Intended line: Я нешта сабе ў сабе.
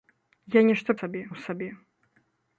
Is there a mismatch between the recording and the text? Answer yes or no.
no